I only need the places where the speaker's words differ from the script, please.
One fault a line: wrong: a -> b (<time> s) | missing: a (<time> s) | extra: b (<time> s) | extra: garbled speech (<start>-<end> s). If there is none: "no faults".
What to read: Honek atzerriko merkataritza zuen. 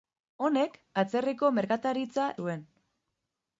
no faults